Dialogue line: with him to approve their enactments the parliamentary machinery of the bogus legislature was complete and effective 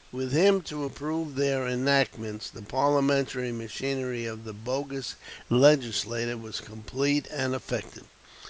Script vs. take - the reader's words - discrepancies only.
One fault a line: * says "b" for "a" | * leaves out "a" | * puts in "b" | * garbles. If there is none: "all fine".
all fine